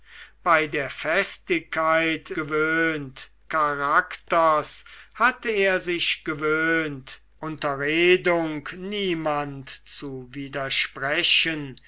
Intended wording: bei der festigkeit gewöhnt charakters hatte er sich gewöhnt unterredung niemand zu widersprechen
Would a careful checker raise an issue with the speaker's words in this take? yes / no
no